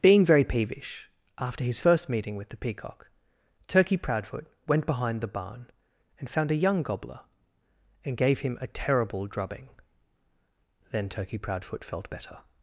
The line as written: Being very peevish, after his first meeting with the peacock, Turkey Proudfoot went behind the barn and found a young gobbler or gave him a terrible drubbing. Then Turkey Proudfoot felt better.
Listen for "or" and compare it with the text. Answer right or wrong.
wrong